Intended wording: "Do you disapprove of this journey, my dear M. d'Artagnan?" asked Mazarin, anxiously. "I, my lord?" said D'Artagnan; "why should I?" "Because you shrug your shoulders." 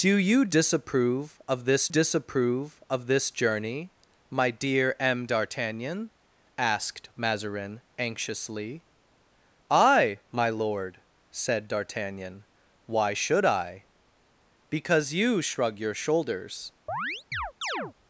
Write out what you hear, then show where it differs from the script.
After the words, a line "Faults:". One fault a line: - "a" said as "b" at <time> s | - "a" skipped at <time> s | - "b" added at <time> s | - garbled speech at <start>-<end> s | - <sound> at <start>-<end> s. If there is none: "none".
"Do you disapprove of this disapprove of this journey, my dear M. d'Artagnan?" asked Mazarin, anxiously. "I, my lord?" said D'Artagnan; "why should I?" "Because you shrug your shoulders."
Faults:
- "disapprove of this" added at 1.9 s
- chirp at 16.9-17.9 s